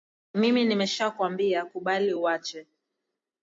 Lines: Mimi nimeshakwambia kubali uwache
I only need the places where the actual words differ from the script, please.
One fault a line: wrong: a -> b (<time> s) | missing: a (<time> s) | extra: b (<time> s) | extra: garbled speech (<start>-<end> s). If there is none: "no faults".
no faults